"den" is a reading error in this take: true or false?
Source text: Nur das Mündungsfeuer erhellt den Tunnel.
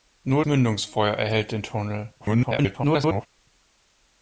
false